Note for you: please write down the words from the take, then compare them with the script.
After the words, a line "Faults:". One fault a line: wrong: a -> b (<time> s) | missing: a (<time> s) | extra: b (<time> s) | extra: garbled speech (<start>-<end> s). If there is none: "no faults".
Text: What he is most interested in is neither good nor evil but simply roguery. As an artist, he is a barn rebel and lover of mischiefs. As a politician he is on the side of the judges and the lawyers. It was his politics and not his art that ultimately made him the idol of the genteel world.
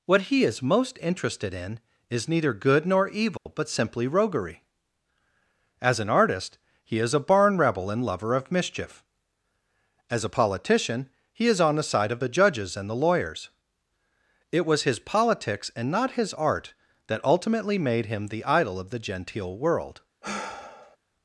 What he is most interested in is neither good nor evil but simply roguery. As an artist, he is a barn rebel and lover of mischief. As a politician he is on the side of the judges and the lawyers. It was his politics and not his art that ultimately made him the idol of the genteel world.
Faults:
wrong: mischiefs -> mischief (8.5 s)